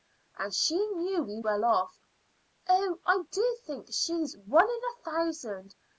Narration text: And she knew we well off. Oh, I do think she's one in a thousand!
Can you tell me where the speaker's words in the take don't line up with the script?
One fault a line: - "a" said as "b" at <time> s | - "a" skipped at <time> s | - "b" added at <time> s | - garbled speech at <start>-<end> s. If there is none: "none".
none